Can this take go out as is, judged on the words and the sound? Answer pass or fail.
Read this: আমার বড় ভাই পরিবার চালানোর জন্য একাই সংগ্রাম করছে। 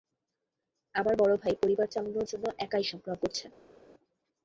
pass